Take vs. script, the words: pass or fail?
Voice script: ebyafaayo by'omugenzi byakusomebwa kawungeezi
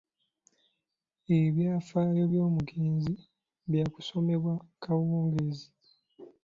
pass